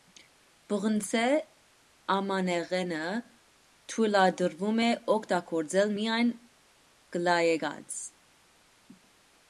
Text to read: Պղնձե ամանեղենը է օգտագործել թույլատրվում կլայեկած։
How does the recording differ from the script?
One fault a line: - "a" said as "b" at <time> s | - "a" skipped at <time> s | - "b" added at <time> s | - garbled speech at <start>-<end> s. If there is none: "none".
- "թույլատրվում" added at 3.9 s
- "թույլատրվում" said as "միայն" at 6.0 s